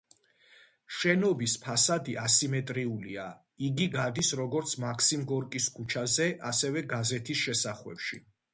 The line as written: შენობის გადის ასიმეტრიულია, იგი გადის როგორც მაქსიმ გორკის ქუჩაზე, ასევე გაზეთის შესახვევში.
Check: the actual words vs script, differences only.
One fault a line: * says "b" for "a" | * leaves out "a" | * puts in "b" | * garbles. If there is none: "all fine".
* says "ფასადი" for "გადის"